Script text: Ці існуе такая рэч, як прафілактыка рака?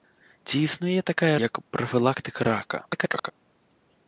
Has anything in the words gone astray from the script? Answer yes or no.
yes